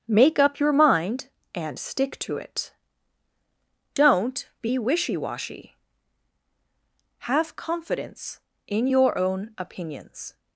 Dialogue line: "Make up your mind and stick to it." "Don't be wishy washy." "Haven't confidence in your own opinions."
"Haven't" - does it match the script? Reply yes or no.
no